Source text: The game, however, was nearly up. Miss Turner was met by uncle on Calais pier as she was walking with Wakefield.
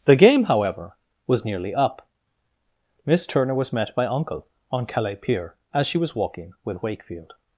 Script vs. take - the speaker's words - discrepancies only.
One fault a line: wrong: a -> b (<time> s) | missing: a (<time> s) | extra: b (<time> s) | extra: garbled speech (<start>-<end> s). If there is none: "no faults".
no faults